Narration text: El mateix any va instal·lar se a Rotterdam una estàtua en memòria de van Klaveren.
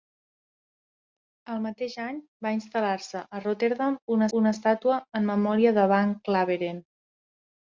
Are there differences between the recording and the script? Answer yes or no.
yes